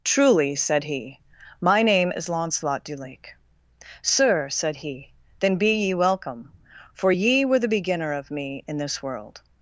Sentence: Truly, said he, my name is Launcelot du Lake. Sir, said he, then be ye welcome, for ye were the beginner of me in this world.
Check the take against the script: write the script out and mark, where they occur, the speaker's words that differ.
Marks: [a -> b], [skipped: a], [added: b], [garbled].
Truly, said he, my name is Launcelot du Lake. Sir, said he, then be ye welcome, for ye were the beginner of me in this world.